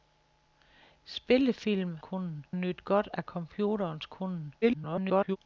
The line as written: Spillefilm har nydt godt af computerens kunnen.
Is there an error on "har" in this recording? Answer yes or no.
yes